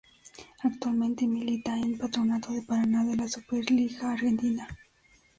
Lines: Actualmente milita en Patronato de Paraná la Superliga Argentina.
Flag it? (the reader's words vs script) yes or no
yes